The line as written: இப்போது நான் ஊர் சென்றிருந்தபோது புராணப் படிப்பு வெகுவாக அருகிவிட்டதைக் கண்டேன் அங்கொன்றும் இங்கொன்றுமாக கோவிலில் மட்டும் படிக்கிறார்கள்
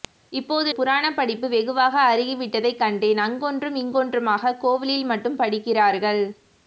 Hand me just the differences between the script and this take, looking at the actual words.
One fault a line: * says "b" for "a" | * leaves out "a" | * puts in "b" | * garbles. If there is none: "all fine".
* leaves out "நான் ஊர் சென்றிருந்தபோது"